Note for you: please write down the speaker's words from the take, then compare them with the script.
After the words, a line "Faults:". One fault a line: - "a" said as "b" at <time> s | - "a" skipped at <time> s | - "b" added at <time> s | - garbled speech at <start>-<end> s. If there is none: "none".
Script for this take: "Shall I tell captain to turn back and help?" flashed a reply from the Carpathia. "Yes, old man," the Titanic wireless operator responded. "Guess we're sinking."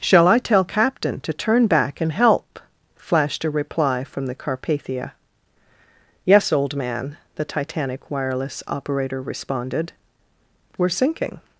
"Shall I tell captain to turn back and help?" flashed a reply from the Carpathia. "Yes, old man," the Titanic wireless operator responded. "We're sinking."
Faults:
- "Guess" skipped at 9.9 s